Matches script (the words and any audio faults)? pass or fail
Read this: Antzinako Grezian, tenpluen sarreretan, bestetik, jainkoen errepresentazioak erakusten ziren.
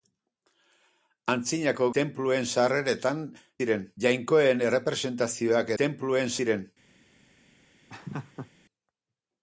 fail